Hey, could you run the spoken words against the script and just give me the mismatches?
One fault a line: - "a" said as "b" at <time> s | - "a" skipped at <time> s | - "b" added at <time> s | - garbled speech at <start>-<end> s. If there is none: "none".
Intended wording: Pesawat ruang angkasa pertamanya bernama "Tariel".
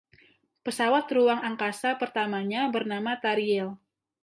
none